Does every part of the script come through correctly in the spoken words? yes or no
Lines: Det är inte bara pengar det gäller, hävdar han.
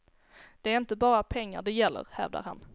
yes